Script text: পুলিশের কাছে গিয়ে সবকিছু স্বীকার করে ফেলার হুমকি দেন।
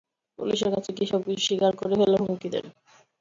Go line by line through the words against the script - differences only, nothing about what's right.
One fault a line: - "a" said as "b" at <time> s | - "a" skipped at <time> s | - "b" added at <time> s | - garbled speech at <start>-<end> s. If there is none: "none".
none